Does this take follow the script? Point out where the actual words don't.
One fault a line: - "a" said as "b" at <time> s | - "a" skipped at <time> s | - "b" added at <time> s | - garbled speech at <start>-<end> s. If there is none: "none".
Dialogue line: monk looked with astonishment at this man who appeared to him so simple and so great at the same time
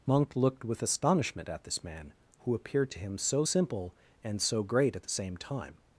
none